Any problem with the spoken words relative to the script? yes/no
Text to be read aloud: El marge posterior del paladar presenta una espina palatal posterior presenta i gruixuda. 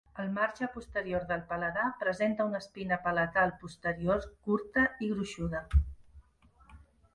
yes